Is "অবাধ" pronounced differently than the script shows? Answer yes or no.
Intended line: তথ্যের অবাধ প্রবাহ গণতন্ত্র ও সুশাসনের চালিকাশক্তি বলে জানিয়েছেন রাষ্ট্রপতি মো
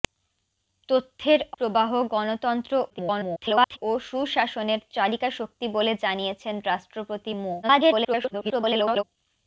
yes